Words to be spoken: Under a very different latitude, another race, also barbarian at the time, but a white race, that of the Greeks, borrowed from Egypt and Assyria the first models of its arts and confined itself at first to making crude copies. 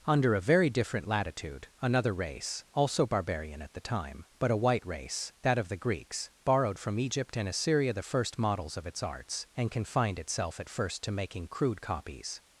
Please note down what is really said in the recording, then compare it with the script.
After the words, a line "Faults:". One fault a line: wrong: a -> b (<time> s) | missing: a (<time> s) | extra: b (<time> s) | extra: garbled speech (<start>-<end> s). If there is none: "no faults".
Under a very different latitude, another race, also barbarian at the time, but a white race, that of the Greeks, borrowed from Egypt and Assyria the first models of its arts and confined itself at first to making crude copies.
Faults:
no faults